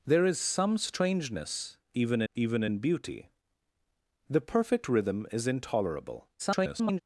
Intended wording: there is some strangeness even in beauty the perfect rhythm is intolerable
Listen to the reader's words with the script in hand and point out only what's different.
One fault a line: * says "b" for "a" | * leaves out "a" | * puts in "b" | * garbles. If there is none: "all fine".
* puts in "even"
* garbles